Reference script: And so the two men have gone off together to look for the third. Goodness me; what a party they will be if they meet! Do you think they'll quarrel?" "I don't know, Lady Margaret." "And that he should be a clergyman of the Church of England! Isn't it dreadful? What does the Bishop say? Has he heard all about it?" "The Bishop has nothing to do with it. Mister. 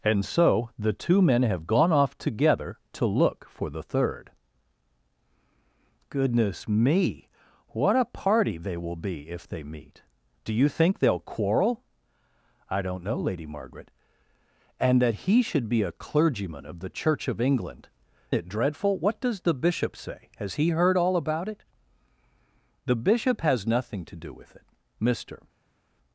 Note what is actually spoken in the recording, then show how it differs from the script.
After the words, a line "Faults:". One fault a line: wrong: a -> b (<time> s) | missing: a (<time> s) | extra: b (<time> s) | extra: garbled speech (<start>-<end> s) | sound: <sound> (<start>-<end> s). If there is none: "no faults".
And so the two men have gone off together to look for the third. Goodness me; what a party they will be if they meet! Do you think they'll quarrel?" "I don't know, Lady Margaret." "And that he should be a clergyman of the Church of England! It dreadful? What does the Bishop say? Has he heard all about it?" "The Bishop has nothing to do with it. Mister.
Faults:
missing: Isn't (17.9 s)